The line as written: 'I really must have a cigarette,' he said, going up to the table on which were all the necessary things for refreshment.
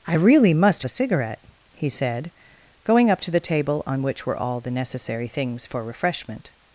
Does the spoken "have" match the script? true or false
false